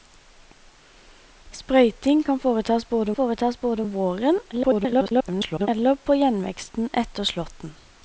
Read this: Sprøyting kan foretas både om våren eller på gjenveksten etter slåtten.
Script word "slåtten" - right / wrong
right